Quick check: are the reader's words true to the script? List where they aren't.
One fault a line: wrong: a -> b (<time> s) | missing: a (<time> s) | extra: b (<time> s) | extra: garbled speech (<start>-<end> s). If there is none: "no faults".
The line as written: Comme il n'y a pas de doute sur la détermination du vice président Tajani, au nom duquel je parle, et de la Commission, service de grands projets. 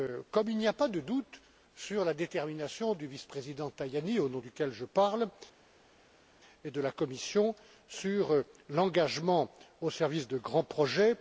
extra: sur l'engagement au (7.9 s)